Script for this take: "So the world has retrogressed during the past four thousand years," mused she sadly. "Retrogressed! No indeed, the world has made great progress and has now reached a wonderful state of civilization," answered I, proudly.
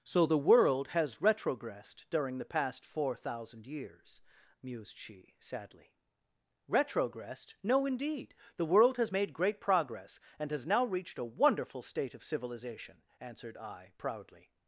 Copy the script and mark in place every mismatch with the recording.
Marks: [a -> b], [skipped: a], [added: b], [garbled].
"So the world has retrogressed during the past four thousand years," mused she sadly. "Retrogressed! No indeed, the world has made great progress and has now reached a wonderful state of civilization," answered I, proudly.